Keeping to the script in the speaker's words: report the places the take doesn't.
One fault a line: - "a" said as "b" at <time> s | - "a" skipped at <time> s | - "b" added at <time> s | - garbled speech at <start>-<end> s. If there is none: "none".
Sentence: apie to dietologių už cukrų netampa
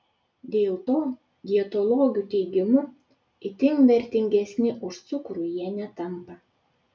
- "apie" said as "dėl" at 0.5 s
- "teigimu itin vertingesni" added at 2.3 s
- "jie" added at 5.6 s